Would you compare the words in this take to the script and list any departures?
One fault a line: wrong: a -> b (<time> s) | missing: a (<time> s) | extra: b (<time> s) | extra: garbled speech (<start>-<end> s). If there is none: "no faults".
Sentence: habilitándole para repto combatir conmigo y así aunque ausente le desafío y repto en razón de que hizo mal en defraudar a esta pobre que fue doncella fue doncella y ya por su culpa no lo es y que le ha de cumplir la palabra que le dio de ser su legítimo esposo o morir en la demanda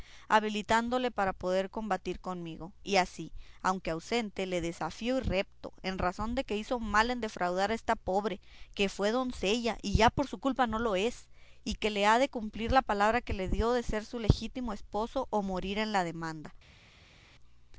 wrong: repto -> poder (1.3 s)
missing: fue doncella (9.8 s)